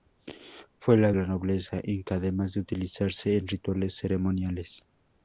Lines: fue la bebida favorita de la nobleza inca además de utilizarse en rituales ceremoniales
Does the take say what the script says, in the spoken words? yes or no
no